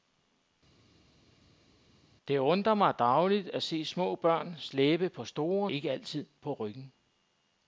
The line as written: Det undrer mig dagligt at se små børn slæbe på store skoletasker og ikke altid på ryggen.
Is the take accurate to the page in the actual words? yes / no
no